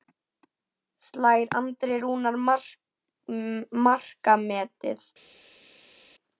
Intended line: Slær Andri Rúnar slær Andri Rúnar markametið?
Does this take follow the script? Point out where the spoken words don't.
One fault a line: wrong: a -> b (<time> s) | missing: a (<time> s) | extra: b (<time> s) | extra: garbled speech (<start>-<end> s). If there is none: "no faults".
missing: slær Andri Rúnar (2.4 s)